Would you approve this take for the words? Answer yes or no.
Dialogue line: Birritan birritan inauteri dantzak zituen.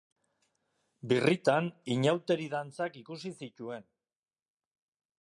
no